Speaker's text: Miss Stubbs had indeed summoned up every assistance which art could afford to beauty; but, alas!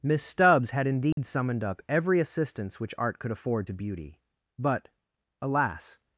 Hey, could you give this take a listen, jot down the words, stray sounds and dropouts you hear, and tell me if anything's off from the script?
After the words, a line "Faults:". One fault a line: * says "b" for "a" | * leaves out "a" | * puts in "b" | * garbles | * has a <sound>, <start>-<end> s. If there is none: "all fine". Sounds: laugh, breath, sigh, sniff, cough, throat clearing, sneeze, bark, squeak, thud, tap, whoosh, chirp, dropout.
Miss Stubbs had indeed summoned up every assistance which art could afford to beauty; but, alas!
Faults:
* has a dropout, 1.1-1.2 s